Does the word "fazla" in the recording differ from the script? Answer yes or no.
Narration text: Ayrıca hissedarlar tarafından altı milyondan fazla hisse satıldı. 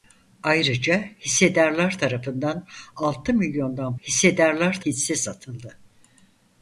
yes